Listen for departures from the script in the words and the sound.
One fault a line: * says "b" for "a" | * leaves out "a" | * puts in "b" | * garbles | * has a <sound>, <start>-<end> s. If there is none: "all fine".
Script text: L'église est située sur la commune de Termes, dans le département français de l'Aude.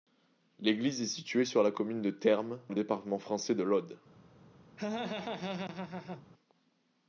* leaves out "dans"
* has a laugh, 4.8-6.2 s